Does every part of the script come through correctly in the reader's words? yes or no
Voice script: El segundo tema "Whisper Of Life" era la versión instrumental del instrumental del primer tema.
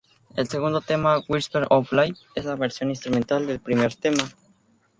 no